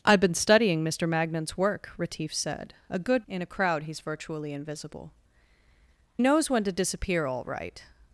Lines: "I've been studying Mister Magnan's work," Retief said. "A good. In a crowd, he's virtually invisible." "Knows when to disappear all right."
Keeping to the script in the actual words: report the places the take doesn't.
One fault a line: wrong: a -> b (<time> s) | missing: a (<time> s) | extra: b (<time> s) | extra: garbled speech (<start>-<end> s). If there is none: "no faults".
no faults